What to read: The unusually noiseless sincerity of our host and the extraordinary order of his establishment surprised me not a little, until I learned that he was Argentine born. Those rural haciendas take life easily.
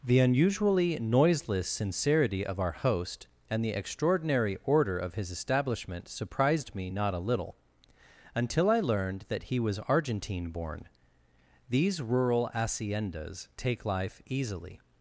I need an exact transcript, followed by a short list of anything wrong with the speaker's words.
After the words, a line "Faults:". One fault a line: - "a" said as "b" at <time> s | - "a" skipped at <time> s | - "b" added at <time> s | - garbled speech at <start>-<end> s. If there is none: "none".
The unusually noiseless sincerity of our host and the extraordinary order of his establishment surprised me not a little, until I learned that he was Argentine born. These rural haciendas take life easily.
Faults:
- "Those" said as "These" at 11.7 s